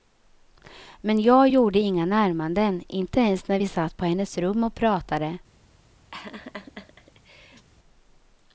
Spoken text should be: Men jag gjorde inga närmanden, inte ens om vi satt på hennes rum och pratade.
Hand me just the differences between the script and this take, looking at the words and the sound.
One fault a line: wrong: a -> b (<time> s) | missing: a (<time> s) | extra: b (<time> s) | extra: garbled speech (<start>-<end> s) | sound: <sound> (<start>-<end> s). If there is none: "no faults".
wrong: om -> när (3.5 s)
sound: laugh (6.1-7.7 s)